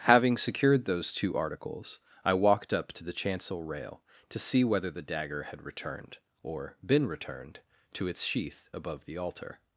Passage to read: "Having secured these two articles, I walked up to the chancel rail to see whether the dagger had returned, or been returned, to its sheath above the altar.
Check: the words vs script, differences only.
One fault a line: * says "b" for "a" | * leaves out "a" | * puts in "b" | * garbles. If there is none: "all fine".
* says "those" for "these"